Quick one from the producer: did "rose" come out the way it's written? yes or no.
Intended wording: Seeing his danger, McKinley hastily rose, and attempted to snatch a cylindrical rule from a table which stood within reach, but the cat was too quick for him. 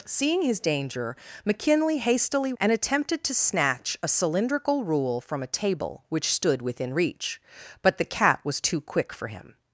no